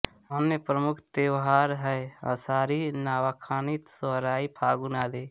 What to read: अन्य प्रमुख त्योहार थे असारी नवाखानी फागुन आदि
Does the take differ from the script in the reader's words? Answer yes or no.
yes